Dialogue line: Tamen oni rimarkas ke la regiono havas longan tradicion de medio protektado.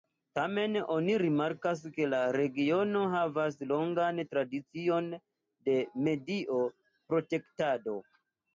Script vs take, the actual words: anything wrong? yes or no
no